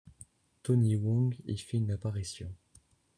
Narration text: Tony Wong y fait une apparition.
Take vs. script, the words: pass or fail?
pass